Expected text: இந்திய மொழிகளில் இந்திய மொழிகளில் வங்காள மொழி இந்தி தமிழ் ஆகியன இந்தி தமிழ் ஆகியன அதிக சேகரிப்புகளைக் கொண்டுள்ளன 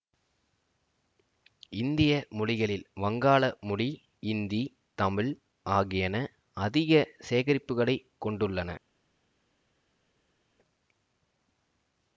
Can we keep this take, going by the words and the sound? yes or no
no